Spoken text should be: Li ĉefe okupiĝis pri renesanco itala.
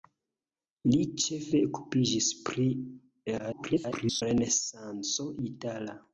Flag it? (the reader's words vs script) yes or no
yes